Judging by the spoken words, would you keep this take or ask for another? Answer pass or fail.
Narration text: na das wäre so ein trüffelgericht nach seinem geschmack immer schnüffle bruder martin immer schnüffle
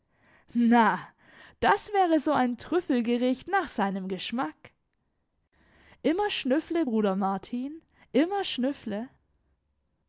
pass